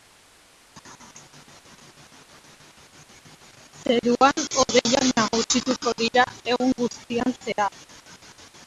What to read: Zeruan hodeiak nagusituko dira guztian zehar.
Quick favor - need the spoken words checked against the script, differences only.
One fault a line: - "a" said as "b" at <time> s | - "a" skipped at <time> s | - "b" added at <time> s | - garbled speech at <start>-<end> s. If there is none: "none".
- "egun" added at 6.5 s